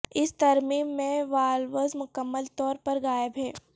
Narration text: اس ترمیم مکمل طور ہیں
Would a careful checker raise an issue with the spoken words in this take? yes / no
yes